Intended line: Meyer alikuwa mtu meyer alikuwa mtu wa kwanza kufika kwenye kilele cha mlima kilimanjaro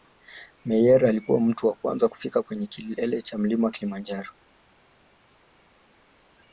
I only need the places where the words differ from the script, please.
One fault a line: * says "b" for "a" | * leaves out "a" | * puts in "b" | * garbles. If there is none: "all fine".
* leaves out "meyer alikuwa mtu"